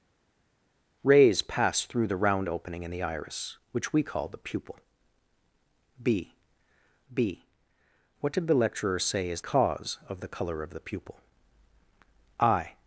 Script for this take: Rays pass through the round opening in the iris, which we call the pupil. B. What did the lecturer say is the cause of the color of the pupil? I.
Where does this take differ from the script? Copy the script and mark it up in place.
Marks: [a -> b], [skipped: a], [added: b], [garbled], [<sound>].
Rays pass through the round opening in the iris, which we call the pupil. B. [added: b] What did the lecturer say is [skipped: the] cause of the color of the pupil? I.